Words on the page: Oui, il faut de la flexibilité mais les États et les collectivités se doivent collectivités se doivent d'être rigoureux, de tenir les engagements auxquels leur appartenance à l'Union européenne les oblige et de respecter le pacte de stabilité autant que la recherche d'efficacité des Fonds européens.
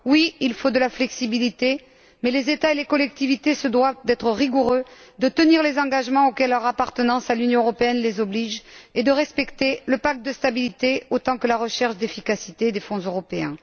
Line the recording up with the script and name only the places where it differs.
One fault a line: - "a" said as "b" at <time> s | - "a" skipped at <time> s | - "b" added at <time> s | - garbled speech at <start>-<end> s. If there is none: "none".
- "collectivités se doivent" skipped at 4.0 s